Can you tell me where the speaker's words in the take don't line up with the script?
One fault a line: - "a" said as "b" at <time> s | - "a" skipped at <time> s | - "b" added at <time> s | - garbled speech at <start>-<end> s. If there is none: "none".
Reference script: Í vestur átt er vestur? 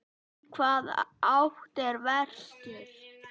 - "vestur" said as "hvaða" at 0.6 s